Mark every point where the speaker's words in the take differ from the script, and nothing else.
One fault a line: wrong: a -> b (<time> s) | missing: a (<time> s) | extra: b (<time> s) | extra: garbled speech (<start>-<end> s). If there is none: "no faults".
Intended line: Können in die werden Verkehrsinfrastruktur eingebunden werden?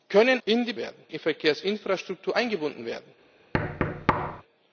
no faults